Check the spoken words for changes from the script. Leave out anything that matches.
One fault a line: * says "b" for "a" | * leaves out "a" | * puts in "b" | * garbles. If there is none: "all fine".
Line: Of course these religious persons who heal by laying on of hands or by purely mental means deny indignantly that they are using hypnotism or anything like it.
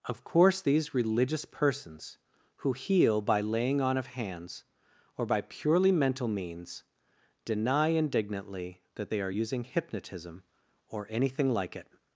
all fine